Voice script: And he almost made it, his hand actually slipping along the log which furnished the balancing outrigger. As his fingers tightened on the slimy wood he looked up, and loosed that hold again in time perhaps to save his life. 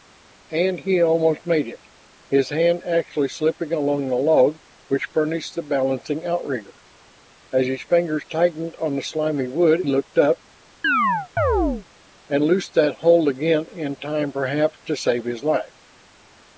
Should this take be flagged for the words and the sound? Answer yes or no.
yes